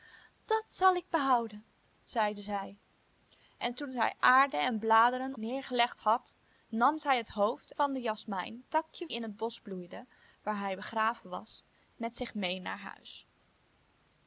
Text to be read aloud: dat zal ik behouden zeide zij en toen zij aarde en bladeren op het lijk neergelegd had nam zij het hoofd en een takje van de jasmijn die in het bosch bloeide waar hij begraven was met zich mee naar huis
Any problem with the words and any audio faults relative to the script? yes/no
yes